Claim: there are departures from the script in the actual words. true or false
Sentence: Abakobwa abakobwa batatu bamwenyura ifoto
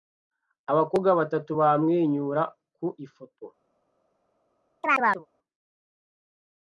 true